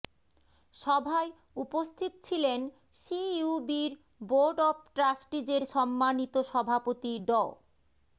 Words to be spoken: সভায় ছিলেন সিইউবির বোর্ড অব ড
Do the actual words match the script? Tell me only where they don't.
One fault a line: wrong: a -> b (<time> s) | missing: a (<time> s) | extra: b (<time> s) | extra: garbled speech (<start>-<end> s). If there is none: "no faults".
extra: উপস্থিত (1.6 s)
extra: ট্রাস্টিজের সম্মানিত সভাপতি (5.0 s)